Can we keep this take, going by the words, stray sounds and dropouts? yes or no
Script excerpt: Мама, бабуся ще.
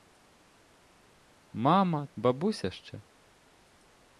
yes